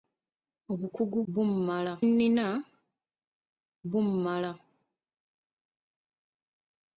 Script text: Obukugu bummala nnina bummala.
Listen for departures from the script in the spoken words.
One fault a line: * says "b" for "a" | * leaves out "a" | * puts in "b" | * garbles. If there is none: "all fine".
all fine